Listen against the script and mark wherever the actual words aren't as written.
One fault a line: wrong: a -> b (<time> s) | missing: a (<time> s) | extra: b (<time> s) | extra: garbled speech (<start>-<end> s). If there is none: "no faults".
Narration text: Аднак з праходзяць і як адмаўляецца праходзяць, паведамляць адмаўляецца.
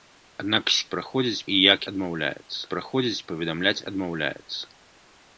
no faults